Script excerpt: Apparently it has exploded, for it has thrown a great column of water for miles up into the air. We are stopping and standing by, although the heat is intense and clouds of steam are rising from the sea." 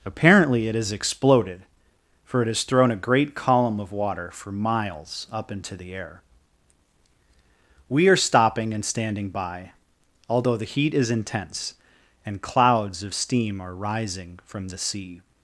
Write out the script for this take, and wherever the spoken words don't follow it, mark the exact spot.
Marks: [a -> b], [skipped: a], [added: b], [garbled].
Apparently it has exploded, for it has thrown a great column of water for miles up into the air. We are stopping and standing by, although the heat is intense and clouds of steam are rising from the sea."